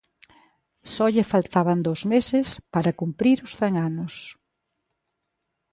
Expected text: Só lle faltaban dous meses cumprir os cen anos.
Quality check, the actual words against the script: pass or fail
fail